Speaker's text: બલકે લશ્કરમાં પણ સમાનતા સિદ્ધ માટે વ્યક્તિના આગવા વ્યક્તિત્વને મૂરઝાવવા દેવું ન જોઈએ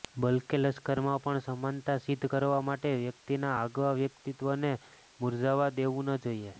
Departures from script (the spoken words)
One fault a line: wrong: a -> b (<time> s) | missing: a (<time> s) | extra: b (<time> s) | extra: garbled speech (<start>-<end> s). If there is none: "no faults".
extra: કરવા (2.3 s)